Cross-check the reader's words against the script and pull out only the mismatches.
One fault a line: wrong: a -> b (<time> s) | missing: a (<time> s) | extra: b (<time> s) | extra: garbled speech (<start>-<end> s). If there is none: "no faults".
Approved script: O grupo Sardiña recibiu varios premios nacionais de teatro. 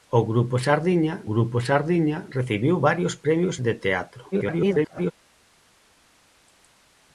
extra: grupo Sardiña (1.3 s)
missing: nacionais (3.6 s)
extra: garbled speech (4.3-5.1 s)